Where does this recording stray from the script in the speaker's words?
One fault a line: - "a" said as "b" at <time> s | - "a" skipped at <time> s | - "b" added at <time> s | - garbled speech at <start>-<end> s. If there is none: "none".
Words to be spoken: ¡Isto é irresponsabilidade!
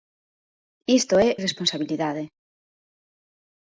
none